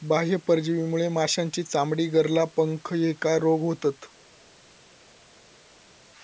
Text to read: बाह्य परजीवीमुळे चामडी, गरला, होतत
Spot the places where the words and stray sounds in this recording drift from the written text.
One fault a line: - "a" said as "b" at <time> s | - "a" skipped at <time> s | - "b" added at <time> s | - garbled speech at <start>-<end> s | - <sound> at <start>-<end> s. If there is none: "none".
- "माशांची" added at 1.1 s
- "पंख ह्येका रोग" added at 2.6 s